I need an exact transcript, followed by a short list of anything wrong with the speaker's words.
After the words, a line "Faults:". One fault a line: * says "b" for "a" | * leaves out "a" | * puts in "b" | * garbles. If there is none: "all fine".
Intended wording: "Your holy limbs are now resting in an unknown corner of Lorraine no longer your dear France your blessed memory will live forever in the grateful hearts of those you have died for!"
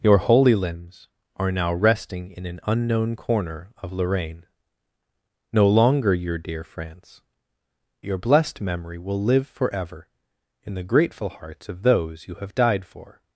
"Your holy limbs are now resting in an unknown corner of Lorraine no longer your dear France your blessed memory will live forever in the grateful hearts of those you have died for!"
Faults:
all fine